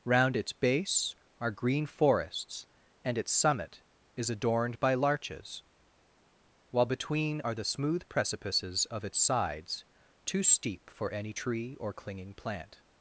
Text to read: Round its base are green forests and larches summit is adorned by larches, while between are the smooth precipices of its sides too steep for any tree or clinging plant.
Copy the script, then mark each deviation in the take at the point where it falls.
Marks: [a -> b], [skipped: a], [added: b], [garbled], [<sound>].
Round its base are green forests and [larches -> its] summit is adorned by larches, while between are the smooth precipices of its sides too steep for any tree or clinging plant.